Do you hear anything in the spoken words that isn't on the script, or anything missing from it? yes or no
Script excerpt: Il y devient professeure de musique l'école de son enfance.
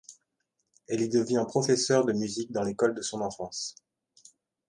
yes